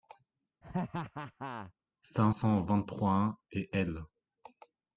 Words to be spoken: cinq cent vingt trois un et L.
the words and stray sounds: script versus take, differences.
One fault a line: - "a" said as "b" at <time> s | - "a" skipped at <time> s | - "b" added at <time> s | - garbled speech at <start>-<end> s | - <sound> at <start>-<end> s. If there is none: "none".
- laugh at 0.6-1.7 s